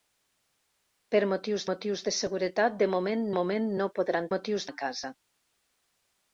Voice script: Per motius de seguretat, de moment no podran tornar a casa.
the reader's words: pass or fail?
fail